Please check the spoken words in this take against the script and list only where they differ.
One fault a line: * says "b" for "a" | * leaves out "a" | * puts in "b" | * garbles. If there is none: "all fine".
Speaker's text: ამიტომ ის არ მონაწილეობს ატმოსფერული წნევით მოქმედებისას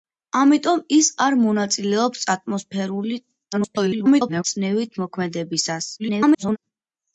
* garbles
* garbles